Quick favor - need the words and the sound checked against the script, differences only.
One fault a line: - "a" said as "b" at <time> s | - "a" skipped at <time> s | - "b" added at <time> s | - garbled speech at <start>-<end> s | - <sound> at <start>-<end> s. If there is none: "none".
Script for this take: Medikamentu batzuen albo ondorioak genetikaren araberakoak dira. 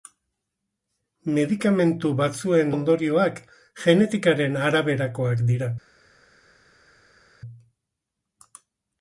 - "albo" skipped at 2.7 s